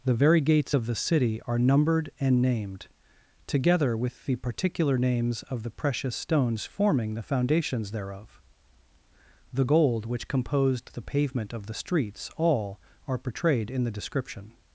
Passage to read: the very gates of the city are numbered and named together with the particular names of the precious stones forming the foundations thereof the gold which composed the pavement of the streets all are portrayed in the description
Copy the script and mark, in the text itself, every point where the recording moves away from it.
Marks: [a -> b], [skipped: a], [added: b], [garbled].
the very gates of the city are numbered and named together with the particular names of the precious stones forming the foundations thereof the gold which composed the pavement of the streets all are portrayed in the description